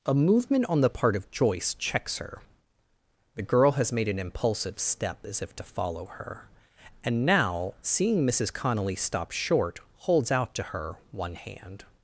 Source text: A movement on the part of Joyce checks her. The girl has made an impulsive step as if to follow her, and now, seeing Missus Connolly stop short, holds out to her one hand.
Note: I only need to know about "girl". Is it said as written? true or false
true